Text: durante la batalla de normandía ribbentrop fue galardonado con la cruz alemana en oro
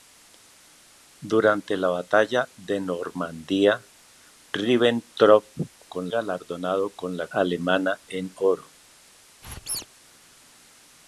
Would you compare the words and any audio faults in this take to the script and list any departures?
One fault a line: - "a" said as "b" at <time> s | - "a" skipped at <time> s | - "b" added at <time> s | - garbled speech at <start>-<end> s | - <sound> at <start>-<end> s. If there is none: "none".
- "fue" said as "con" at 5.8 s
- "cruz" skipped at 7.3 s
- squeak at 9.4-9.9 s